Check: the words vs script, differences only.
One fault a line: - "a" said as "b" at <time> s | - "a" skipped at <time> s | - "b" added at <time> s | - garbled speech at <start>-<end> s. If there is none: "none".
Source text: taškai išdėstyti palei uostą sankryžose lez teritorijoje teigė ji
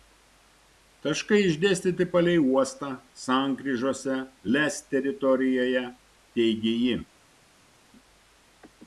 none